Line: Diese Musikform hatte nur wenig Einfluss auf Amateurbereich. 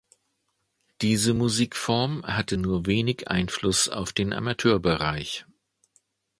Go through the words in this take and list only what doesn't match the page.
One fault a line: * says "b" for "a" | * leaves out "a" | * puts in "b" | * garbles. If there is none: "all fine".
* puts in "den"